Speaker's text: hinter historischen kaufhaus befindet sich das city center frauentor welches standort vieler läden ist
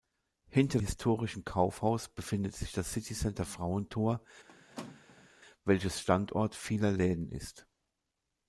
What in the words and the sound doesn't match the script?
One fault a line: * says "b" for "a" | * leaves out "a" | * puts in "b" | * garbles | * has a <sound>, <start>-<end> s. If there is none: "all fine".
* has a squeak, 4.5-5.3 s